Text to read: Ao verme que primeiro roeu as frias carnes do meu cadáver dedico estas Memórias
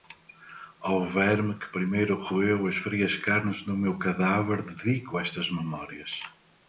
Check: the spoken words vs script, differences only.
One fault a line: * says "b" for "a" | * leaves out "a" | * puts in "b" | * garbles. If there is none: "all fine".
all fine